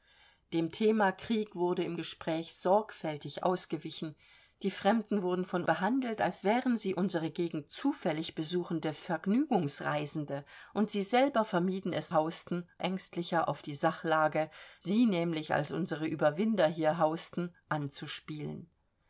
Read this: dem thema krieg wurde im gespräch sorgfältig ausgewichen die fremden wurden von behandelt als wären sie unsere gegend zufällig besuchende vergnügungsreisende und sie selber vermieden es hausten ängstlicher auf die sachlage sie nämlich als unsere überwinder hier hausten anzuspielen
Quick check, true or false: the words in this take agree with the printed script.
true